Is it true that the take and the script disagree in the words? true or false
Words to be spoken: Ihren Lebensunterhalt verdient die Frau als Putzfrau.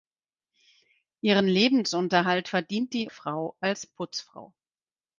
false